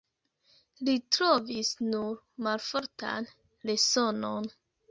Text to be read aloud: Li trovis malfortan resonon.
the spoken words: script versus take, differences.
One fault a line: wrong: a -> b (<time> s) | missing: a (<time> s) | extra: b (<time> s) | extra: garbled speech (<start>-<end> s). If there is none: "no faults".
extra: nur (1.9 s)